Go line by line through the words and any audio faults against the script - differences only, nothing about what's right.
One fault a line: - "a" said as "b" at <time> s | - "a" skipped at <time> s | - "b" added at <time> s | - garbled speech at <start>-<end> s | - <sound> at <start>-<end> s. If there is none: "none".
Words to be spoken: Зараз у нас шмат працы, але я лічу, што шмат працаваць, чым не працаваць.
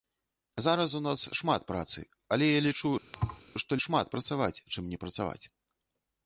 - thud at 3.1-3.4 s